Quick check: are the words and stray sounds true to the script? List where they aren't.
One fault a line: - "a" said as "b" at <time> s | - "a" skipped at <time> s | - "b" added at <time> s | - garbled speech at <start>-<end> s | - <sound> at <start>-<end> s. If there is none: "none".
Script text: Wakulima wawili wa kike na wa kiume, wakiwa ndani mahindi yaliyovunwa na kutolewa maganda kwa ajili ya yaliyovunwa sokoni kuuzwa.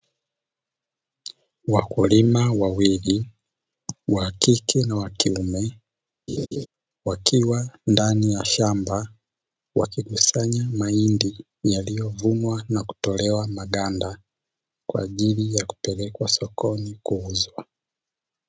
- laugh at 6.3-6.7 s
- "ya shamba wakikusanya" added at 8.3 s
- "yaliyovunwa" said as "kupelekwa" at 15.7 s